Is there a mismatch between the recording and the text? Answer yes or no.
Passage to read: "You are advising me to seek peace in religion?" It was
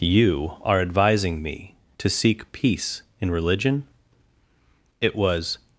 no